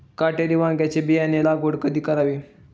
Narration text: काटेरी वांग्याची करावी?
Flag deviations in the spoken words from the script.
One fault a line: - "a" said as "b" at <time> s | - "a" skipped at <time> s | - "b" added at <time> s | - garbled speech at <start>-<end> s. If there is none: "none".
- "बियाणे लागवड कधी" added at 1.0 s